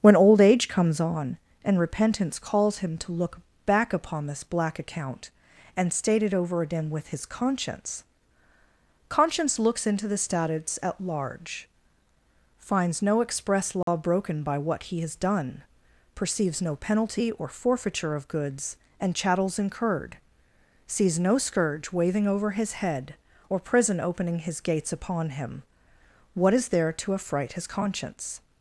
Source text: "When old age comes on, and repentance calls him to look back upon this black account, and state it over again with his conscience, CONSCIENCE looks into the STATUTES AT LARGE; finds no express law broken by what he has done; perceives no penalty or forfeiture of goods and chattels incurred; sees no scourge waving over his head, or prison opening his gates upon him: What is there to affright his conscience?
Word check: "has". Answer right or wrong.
right